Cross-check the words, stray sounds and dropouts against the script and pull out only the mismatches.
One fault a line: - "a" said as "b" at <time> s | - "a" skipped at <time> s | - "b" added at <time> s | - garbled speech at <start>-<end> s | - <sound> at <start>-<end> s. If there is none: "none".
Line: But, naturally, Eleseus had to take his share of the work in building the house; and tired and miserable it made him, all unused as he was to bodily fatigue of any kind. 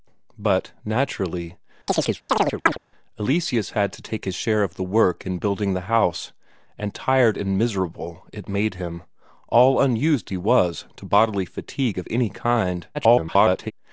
- chirp at 1.9-2.8 s
- "as" skipped at 10.3 s
- garbled speech at 12.9-13.7 s